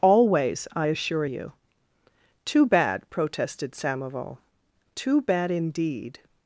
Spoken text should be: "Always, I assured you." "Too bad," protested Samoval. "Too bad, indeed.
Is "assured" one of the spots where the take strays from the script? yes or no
yes